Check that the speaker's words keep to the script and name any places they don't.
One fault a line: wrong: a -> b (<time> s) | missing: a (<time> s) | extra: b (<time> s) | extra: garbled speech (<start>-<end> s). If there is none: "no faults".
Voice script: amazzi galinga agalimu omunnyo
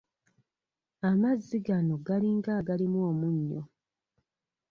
extra: gano (1.7 s)